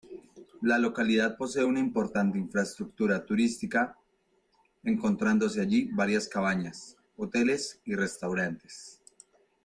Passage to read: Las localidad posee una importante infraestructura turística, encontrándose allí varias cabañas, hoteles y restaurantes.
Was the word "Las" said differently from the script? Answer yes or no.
yes